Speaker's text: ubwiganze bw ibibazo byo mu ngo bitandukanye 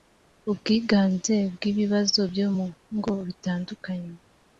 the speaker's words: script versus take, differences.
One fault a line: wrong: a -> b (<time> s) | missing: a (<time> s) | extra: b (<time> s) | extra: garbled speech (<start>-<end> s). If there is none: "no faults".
no faults